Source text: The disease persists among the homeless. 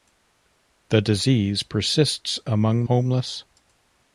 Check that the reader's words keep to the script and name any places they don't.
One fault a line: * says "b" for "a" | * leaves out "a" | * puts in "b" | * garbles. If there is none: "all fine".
* leaves out "the"